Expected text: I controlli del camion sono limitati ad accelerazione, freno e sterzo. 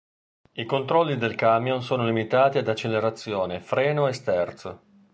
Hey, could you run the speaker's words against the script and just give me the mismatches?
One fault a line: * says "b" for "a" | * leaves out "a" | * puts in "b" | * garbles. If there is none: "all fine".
all fine